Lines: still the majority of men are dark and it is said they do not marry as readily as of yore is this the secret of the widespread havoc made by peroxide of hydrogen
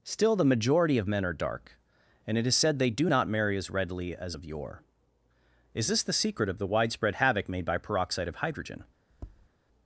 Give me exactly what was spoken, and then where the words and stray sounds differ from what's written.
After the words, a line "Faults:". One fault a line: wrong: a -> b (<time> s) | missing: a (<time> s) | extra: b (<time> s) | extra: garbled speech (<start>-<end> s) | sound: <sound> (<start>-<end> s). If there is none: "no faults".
still the majority of men are dark and it is said they do not marry as readily as of yore is this the secret of the widespread havoc made by peroxide of hydrogen
Faults:
sound: tap (9.1-9.5 s)